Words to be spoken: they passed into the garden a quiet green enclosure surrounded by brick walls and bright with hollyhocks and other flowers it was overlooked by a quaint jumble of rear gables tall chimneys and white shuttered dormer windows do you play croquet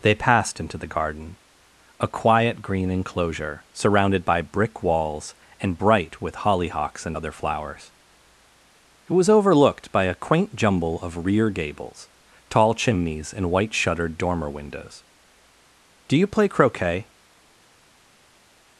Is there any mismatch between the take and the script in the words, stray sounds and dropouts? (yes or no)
no